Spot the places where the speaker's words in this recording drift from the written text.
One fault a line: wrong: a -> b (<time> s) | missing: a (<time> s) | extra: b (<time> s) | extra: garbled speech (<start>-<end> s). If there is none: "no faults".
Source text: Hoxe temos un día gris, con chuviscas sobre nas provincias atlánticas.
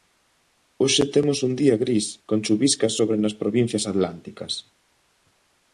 no faults